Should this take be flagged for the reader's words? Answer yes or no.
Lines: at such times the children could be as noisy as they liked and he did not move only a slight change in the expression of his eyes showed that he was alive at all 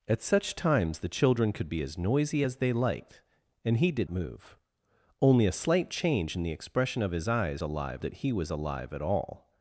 yes